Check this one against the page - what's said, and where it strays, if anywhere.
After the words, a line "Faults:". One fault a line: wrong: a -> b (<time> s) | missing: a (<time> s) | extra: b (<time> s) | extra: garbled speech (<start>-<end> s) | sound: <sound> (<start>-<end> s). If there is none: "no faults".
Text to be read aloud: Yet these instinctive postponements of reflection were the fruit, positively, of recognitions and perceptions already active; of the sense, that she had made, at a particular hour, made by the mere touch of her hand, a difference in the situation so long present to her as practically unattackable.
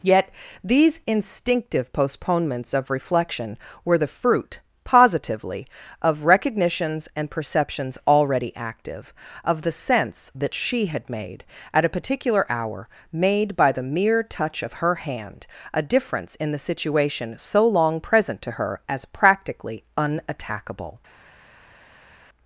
Yet these instinctive postponements of reflection were the fruit, positively, of recognitions and perceptions already active; of the sense, that she had made, at a particular hour, made by the mere touch of her hand, a difference in the situation so long present to her as practically unattackable.
Faults:
no faults